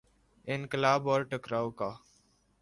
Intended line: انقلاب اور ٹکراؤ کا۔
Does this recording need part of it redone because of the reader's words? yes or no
no